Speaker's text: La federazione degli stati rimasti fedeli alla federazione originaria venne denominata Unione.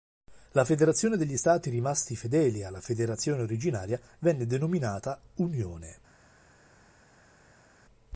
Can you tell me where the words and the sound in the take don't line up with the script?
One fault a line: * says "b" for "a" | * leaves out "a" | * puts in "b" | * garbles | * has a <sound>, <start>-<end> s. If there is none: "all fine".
all fine